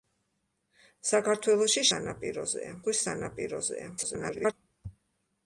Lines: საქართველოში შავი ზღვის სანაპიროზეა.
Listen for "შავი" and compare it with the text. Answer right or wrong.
wrong